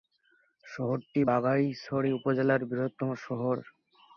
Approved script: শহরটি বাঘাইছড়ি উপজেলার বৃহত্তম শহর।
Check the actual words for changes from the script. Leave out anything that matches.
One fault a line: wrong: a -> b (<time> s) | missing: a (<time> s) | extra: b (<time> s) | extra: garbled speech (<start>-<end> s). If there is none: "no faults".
no faults